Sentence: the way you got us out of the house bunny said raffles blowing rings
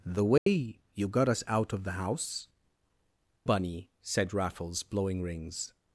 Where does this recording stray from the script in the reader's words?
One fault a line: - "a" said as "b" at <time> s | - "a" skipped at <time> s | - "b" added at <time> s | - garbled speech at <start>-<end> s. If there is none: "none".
none